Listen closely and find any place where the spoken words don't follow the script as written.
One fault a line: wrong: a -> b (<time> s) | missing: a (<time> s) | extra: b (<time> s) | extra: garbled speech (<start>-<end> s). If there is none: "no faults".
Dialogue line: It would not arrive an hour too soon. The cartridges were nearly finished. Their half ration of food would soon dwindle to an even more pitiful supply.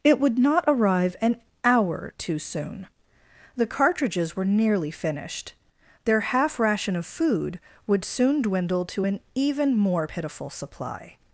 no faults